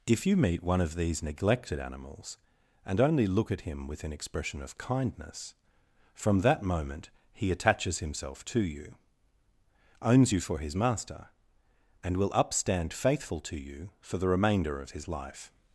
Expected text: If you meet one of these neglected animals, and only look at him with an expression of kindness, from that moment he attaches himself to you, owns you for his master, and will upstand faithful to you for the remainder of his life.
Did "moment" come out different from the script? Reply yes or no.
no